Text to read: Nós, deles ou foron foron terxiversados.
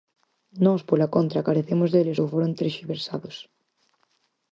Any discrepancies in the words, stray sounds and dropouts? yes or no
yes